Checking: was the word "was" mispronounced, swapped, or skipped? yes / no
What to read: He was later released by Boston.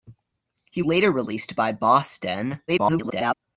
yes